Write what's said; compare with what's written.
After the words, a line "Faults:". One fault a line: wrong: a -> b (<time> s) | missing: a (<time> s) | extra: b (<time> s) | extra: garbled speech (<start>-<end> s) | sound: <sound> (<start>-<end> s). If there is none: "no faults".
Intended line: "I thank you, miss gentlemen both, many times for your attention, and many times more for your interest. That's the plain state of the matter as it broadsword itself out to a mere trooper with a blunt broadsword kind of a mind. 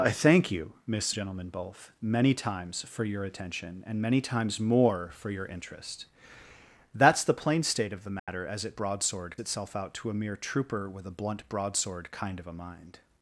"I thank you, miss gentlemen both, many times for your attention, and many times more for your interest. That's the plain state of the matter as it broadsword itself out to a mere trooper with a blunt broadsword kind of a mind.
Faults:
sound: dropout (8.2-8.3 s)